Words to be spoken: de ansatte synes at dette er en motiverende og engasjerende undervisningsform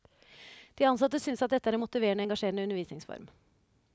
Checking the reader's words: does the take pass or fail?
pass